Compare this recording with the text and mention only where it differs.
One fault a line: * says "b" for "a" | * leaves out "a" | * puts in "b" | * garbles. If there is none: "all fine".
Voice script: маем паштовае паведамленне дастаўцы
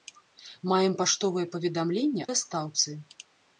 all fine